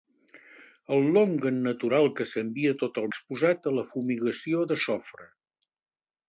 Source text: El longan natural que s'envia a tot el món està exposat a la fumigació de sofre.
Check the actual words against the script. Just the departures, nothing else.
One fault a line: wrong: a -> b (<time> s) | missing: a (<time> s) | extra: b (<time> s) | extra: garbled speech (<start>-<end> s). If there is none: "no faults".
missing: món està (3.1 s)